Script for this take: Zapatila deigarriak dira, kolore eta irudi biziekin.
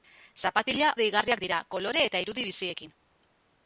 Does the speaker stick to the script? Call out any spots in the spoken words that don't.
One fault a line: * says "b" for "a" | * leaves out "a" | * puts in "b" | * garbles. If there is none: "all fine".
all fine